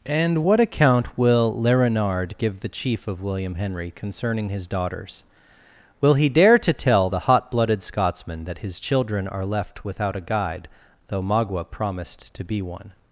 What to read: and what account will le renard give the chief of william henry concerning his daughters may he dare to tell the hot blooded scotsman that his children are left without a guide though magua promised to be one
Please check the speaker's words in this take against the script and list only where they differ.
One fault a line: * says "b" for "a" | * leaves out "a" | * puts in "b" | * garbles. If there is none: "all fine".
* says "will" for "may"